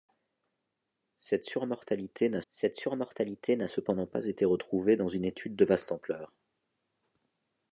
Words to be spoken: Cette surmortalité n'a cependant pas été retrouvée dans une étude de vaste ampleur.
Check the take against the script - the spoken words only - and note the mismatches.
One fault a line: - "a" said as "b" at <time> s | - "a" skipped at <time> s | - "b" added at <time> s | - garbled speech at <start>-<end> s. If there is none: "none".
- "cette surmortalité n'a" added at 2.5 s